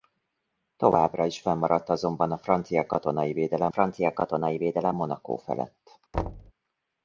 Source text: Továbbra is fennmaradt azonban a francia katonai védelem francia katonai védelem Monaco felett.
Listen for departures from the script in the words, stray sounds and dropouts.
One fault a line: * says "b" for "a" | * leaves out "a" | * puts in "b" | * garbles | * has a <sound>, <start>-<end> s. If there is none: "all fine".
* has a thud, 6.1-6.5 s